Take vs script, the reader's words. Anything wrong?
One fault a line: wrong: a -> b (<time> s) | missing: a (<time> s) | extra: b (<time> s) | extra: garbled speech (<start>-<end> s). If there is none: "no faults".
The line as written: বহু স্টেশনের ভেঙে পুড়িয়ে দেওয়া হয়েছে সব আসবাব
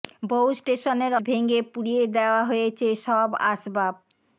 no faults